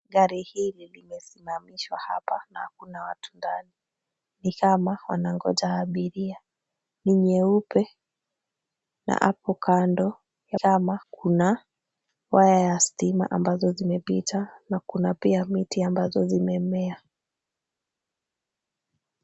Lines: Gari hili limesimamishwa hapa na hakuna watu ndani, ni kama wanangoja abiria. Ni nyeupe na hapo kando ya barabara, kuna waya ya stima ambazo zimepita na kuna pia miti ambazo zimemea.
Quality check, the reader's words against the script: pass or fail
fail